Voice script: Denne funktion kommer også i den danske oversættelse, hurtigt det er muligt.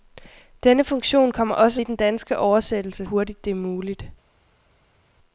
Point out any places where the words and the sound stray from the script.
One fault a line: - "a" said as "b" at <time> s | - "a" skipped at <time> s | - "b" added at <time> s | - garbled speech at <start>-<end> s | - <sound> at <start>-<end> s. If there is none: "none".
none